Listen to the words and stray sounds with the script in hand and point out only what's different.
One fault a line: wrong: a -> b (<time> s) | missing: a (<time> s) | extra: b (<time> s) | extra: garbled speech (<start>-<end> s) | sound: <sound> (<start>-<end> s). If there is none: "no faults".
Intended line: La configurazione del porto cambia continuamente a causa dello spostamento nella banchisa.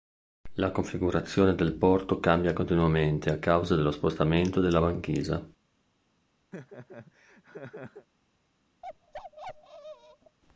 wrong: nella -> della (4.6 s)
sound: laugh (6.5-8.1 s)
sound: bark (8.8-10.4 s)